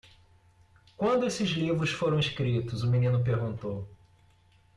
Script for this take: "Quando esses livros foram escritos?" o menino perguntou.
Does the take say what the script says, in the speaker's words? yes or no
yes